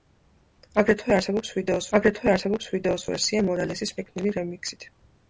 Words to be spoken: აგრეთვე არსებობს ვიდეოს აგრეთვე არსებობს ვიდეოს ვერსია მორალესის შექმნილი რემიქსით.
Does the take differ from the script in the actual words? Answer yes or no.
no